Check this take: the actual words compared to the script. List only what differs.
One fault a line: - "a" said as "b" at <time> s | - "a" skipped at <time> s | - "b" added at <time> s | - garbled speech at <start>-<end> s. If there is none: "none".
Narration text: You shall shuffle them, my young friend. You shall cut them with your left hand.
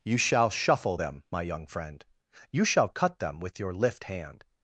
- "left" said as "lift" at 3.7 s